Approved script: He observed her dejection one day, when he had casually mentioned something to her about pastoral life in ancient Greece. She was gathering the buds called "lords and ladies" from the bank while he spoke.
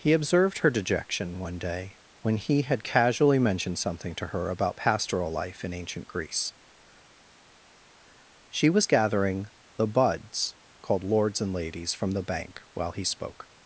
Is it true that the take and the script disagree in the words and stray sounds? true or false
false